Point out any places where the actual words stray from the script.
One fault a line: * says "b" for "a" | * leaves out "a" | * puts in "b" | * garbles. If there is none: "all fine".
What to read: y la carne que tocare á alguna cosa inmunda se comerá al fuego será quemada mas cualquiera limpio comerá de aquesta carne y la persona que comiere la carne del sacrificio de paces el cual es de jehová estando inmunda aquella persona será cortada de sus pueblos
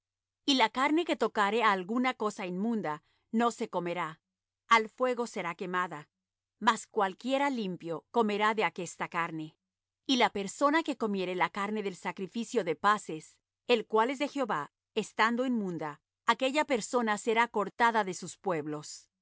* puts in "no"